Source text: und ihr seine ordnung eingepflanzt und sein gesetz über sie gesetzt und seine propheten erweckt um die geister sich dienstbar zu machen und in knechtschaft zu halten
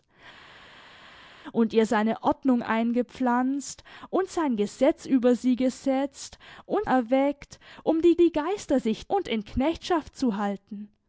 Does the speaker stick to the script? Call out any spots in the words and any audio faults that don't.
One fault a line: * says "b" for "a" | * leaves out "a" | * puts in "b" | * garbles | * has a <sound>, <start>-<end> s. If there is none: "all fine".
* leaves out "seine propheten"
* puts in "die"
* leaves out "dienstbar zu machen"